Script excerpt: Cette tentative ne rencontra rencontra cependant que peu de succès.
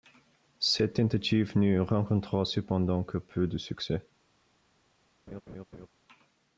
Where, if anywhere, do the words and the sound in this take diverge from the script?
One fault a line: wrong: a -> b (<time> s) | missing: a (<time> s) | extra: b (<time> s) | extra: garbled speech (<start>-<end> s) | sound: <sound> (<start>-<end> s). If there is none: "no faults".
missing: rencontra (2.4 s)
sound: laugh (5.3-5.9 s)